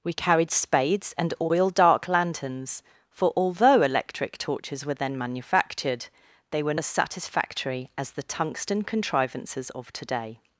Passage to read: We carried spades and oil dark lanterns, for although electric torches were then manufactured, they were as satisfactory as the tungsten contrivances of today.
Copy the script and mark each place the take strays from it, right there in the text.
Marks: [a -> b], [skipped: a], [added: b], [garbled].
We carried spades and oil dark lanterns, for although electric torches were then manufactured, they were as satisfactory as the tungsten contrivances of today.